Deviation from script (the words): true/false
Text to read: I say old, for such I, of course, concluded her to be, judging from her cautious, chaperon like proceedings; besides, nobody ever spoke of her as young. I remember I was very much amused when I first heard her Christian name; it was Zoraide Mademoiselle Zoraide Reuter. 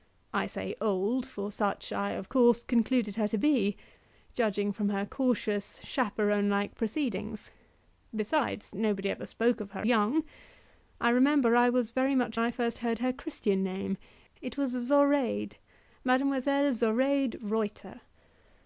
true